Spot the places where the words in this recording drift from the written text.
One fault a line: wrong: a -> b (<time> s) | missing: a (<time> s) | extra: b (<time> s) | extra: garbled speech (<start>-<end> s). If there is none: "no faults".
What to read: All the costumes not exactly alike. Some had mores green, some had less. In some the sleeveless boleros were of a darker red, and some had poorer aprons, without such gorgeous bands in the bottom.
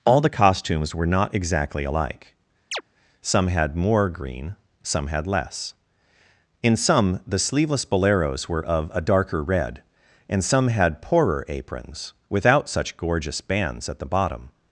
extra: were (0.9 s)
wrong: mores -> more (3.8 s)
wrong: in -> at (13.9 s)